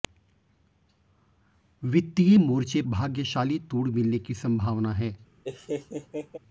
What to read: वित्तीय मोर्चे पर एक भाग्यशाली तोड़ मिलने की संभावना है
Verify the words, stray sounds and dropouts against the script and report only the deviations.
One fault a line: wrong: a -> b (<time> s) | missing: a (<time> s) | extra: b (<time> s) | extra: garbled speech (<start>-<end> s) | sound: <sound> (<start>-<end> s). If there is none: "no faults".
missing: पर एक (2.8 s)
sound: laugh (5.4-6.4 s)